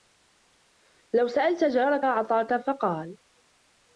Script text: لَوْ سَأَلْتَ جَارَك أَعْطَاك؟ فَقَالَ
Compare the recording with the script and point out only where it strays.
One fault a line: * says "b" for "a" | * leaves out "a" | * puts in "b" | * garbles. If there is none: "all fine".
all fine